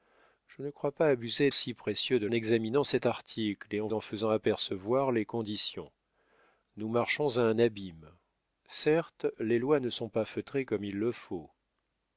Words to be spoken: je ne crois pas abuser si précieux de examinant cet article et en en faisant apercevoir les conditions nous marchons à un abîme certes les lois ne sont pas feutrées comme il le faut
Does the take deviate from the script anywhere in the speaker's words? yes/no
no